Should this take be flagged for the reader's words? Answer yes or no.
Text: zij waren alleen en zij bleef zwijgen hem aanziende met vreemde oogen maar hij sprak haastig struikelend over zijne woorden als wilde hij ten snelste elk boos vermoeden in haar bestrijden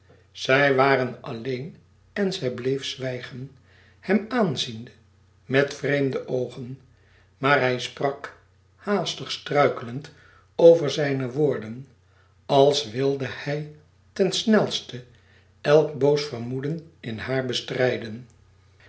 no